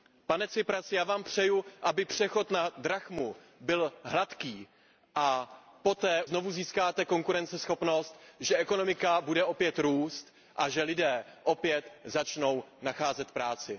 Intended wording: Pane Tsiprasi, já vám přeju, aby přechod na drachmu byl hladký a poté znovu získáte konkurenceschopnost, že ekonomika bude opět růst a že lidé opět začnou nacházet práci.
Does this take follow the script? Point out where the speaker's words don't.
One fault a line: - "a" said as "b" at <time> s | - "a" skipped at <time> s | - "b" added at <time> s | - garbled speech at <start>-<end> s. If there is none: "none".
none